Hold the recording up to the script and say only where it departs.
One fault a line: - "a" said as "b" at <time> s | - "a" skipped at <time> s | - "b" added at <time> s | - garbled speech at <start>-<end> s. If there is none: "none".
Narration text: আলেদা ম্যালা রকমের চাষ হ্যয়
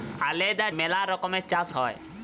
none